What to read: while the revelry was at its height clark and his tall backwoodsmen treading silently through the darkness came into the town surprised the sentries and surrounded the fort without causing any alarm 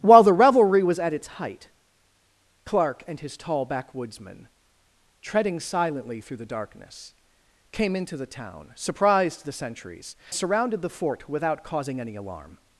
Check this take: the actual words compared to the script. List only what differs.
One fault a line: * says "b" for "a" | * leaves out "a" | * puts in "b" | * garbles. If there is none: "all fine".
* leaves out "and"